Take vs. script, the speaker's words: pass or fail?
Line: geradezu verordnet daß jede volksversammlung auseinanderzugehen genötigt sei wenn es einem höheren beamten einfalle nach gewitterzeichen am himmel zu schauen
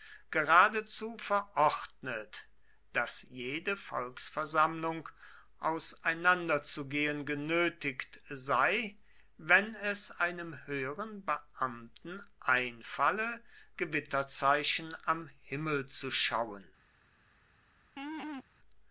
fail